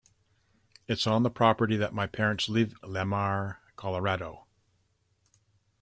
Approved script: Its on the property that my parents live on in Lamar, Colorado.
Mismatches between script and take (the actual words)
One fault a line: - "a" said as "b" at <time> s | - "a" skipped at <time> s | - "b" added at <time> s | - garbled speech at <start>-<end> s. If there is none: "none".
- "on in" skipped at 2.7 s